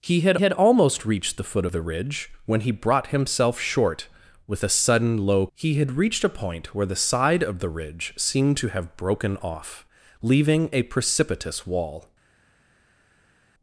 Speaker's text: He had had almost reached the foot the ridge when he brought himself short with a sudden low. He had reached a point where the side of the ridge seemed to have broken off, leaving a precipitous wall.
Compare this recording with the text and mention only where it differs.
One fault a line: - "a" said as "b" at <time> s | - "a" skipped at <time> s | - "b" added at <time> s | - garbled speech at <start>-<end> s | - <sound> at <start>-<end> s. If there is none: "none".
none